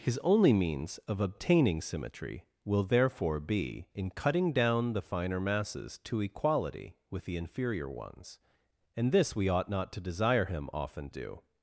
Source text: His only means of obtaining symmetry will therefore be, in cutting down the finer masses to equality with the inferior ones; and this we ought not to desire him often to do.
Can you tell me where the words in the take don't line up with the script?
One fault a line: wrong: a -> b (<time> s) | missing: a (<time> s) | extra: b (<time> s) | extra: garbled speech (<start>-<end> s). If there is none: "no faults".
missing: to (11.1 s)